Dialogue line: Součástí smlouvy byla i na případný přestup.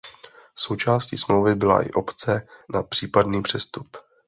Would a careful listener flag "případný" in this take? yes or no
no